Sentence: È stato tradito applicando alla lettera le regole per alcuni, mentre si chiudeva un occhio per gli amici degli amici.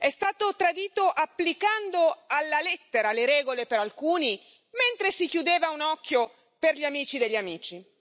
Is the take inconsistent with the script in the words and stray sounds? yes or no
no